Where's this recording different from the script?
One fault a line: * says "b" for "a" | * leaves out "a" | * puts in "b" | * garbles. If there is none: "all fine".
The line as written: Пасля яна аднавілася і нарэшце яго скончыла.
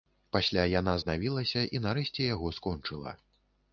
all fine